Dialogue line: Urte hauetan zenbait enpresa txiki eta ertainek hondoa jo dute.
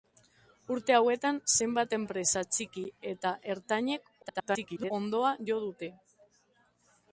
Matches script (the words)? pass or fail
fail